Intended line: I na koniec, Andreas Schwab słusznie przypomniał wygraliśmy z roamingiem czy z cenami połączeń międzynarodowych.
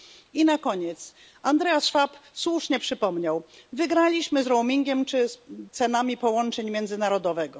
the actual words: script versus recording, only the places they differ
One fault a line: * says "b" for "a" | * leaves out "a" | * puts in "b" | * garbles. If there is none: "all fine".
all fine